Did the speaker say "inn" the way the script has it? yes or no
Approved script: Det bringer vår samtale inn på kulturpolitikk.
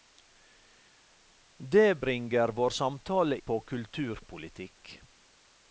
no